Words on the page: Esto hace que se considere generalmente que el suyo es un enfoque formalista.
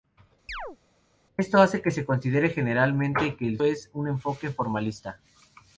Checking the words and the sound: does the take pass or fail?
fail